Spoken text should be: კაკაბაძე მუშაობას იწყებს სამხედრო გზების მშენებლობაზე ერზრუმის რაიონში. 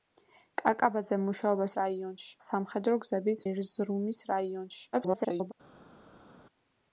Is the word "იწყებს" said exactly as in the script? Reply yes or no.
no